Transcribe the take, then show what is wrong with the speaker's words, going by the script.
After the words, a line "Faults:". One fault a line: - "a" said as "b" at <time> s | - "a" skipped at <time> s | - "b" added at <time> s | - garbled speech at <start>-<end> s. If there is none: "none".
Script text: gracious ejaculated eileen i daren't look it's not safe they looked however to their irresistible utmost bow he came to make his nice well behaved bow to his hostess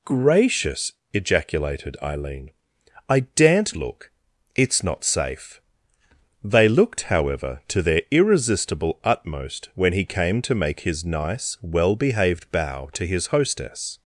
gracious ejaculated eileen i daren't look it's not safe they looked however to their irresistible utmost when he came to make his nice well behaved bow to his hostess
Faults:
- "bow" said as "when" at 9.7 s